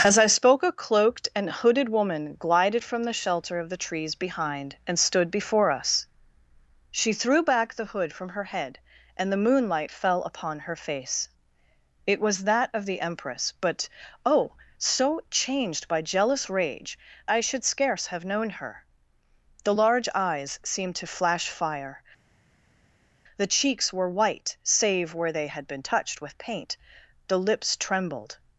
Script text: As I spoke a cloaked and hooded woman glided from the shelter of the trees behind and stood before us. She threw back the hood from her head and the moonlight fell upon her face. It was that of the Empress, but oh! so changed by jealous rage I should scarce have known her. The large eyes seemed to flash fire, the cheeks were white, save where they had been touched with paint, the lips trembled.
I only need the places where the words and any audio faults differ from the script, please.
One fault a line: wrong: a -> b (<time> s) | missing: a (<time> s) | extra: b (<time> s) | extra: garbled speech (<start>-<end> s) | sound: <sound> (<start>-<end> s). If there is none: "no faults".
no faults